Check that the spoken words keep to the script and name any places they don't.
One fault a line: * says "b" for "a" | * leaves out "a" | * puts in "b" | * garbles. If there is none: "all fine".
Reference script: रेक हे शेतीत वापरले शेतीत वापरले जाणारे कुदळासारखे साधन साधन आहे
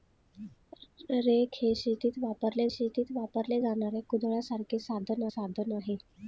all fine